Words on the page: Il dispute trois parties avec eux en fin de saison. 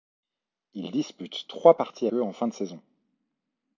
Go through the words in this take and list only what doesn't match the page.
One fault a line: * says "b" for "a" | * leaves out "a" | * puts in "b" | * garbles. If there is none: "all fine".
* leaves out "avec"